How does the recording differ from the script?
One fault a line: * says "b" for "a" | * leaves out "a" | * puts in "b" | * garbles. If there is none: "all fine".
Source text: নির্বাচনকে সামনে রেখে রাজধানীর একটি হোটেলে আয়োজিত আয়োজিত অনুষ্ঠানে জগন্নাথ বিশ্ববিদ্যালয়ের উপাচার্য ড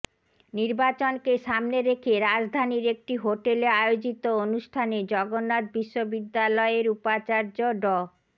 * leaves out "আয়োজিত"